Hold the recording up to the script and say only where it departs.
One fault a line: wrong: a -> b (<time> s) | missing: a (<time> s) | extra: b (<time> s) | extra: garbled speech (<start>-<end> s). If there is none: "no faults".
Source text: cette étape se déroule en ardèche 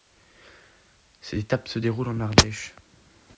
no faults